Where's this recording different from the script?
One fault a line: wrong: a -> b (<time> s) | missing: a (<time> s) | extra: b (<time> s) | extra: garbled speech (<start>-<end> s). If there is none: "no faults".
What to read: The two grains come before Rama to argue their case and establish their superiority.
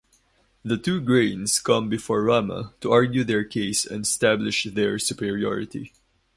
no faults